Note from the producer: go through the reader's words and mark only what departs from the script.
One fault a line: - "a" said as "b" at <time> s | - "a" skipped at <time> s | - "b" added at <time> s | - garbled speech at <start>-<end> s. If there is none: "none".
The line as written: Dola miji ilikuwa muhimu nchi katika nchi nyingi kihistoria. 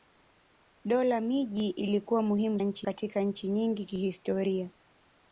none